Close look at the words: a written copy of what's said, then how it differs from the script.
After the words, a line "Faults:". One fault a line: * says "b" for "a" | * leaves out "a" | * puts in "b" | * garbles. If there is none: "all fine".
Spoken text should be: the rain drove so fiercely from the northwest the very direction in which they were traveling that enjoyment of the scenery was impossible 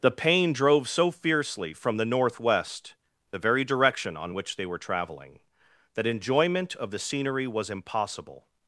the pain drove so fiercely from the northwest the very direction on which they were traveling that enjoyment of the scenery was impossible
Faults:
* says "pain" for "rain"
* says "on" for "in"